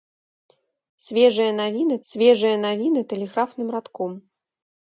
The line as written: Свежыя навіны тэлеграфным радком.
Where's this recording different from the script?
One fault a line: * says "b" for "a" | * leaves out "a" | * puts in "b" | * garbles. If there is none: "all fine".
* puts in "свежыя навіны"